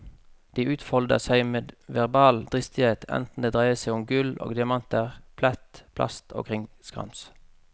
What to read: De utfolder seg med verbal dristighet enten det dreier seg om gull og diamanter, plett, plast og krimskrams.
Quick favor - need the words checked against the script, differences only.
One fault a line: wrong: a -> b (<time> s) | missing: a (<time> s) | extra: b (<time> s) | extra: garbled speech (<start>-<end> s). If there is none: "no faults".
no faults